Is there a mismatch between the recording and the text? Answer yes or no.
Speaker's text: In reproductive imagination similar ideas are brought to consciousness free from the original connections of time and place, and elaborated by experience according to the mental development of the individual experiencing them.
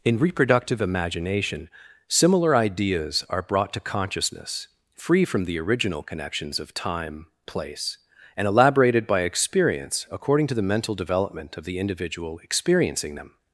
yes